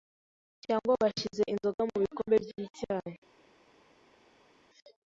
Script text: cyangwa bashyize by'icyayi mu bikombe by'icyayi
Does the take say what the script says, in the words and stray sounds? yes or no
no